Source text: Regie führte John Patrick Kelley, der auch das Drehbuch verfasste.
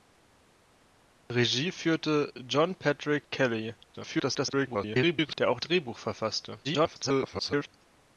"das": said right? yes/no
no